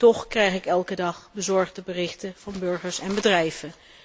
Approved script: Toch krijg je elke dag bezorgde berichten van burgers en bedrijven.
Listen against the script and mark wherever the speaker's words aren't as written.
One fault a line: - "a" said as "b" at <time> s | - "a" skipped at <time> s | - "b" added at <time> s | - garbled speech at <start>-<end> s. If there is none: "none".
- "je" said as "ik" at 0.5 s